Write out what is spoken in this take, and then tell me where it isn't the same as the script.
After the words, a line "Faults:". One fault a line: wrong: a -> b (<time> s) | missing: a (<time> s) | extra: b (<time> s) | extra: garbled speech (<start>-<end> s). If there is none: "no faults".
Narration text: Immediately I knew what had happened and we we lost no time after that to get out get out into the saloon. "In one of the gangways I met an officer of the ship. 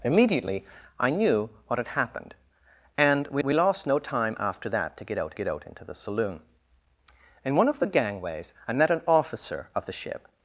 Immediately I knew what had happened and we we lost no time after that to get out get out into the saloon. "In one of the gangways I met an officer of the ship.
Faults:
no faults